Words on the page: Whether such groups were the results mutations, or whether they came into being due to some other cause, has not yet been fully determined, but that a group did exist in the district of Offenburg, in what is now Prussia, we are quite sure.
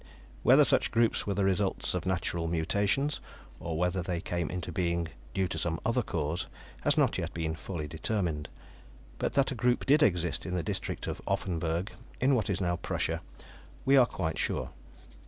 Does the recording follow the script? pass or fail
fail